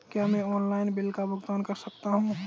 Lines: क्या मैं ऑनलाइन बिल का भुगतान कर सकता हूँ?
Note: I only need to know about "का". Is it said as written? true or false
true